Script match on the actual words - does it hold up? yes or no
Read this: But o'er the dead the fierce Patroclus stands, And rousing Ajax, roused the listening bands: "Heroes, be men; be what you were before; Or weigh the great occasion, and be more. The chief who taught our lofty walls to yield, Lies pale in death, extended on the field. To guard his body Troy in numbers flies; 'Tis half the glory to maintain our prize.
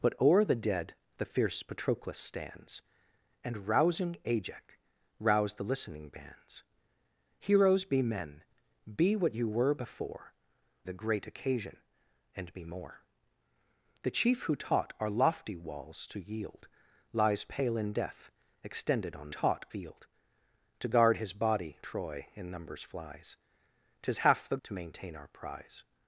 no